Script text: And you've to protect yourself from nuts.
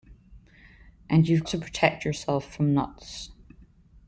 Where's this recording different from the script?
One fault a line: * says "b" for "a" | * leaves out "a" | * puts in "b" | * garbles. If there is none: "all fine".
all fine